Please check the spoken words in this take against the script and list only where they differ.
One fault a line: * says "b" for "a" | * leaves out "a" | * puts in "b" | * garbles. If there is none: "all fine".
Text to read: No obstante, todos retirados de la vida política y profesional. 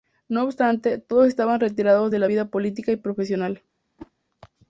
* puts in "estaban"